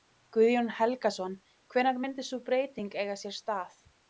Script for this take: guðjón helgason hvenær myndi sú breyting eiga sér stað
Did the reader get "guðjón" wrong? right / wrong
right